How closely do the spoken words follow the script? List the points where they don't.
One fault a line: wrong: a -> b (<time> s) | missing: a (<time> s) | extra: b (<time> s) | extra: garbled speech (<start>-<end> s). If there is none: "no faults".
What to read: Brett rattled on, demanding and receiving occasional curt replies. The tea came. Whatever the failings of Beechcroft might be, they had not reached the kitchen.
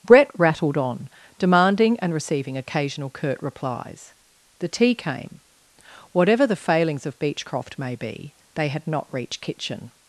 wrong: might -> may (7.8 s)
missing: the (9.4 s)